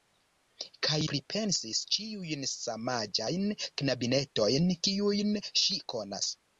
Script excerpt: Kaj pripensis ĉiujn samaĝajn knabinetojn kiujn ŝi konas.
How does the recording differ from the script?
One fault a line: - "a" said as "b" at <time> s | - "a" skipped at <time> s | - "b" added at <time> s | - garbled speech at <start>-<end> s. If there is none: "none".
none